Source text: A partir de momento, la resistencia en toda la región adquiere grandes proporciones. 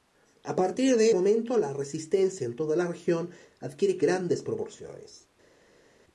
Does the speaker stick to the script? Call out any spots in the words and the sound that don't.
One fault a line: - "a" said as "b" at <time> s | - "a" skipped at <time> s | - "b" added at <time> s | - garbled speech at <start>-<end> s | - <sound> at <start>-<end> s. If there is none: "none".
none